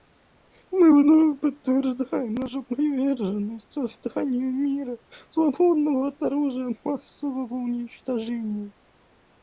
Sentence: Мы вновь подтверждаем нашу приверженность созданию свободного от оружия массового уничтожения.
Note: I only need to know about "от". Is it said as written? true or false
true